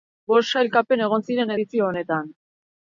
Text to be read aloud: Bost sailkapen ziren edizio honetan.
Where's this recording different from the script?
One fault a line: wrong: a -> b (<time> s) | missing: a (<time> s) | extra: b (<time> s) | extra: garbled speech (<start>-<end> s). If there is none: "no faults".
extra: egon (1.1 s)